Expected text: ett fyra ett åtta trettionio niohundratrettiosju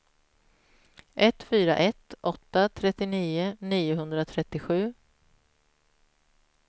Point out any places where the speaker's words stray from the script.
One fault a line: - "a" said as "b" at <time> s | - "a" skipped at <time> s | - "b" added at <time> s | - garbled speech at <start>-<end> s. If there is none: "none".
none